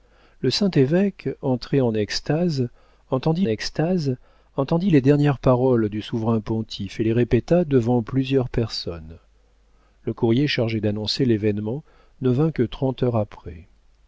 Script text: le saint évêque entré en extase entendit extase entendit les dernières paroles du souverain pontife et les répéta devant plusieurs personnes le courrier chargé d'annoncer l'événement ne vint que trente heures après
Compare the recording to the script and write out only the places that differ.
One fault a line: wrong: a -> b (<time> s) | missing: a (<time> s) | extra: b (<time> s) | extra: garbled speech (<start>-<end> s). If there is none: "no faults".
no faults